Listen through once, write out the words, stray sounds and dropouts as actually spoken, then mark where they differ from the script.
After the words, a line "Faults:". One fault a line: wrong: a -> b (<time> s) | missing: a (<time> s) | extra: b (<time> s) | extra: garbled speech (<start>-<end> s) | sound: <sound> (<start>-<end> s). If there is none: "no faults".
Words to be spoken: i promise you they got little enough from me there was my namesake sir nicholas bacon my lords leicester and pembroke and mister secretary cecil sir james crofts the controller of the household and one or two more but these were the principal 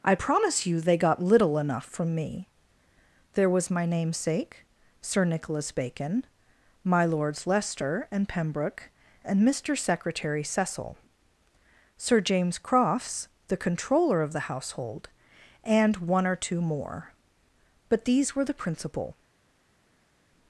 i promise you they got little enough from me there was my namesake sir nicholas bacon my lords leicester and pembroke and mister secretary cecil sir james crofts the controller of the household and one or two more but these were the principal
Faults:
no faults